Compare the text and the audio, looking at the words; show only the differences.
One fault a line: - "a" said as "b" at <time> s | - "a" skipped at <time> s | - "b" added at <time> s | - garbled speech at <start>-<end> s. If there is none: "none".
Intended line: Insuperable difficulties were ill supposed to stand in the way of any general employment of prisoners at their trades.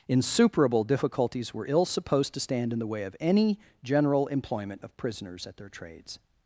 none